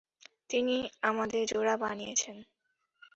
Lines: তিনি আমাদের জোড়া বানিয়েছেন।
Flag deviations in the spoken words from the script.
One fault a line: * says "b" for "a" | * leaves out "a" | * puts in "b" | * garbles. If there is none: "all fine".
all fine